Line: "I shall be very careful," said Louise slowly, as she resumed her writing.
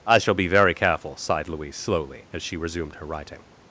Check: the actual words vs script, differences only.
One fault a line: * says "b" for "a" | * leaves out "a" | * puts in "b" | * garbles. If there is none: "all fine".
* says "sighed" for "said"